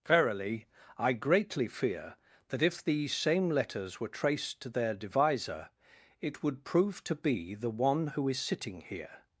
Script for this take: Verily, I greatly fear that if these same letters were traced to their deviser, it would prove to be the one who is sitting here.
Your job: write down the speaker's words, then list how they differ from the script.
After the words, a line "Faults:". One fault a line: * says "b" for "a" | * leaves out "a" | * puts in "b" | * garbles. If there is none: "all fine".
Verily, I greatly fear that if these same letters were traced to their deviser, it would prove to be the one who is sitting here.
Faults:
all fine